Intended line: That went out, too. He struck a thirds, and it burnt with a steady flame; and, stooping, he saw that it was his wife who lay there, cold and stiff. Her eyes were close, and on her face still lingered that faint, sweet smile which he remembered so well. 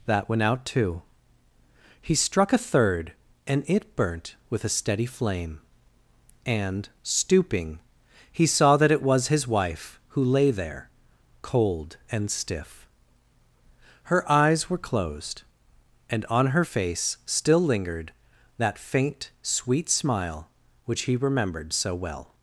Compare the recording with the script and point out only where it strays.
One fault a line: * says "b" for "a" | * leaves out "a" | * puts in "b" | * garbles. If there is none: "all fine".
* says "third" for "thirds"
* says "closed" for "close"